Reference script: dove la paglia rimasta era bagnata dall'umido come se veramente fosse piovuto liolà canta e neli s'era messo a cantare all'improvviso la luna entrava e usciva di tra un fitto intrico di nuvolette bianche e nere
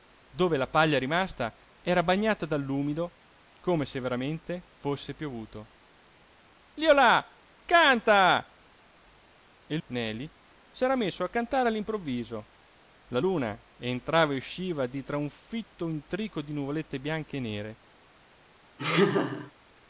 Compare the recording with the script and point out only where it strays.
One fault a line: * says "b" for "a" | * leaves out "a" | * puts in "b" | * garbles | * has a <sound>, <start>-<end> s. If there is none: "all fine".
* has a laugh, 18.8-19.5 s